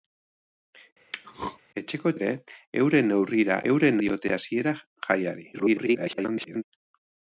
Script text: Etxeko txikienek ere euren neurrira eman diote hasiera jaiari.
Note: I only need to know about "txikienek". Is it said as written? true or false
false